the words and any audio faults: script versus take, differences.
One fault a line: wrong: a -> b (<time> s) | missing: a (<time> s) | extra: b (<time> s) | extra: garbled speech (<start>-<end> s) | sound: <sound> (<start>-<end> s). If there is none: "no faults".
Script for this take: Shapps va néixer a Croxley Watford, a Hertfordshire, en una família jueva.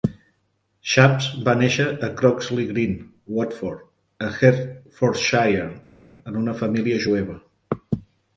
extra: Green (2.7 s)